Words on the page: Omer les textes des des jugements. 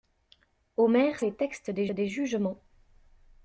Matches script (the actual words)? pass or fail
pass